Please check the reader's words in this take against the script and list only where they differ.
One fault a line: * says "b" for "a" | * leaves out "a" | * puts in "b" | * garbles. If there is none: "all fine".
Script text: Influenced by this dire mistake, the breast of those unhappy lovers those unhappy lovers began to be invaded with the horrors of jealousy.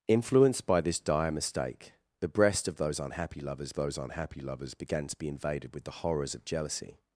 all fine